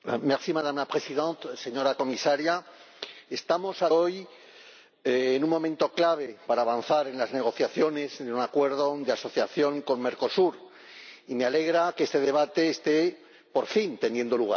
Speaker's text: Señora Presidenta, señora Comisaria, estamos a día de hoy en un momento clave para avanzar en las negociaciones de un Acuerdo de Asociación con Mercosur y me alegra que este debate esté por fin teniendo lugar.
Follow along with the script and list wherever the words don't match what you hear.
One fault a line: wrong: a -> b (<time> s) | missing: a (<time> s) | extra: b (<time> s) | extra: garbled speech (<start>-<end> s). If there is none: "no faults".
missing: día de (3.9 s)